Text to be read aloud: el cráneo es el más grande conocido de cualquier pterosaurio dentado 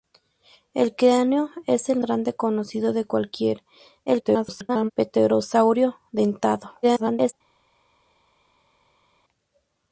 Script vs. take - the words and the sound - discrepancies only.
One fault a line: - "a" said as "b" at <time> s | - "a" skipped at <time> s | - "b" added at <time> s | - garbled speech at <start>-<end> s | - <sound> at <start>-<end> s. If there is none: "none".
- "más" skipped at 2.0 s
- garbled speech at 4.1-4.9 s
- garbled speech at 6.8-7.3 s